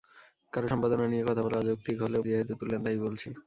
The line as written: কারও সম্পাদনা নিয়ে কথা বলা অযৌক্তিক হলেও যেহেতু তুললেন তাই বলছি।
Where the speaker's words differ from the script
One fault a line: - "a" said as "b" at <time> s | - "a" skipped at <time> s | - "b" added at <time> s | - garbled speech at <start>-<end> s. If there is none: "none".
none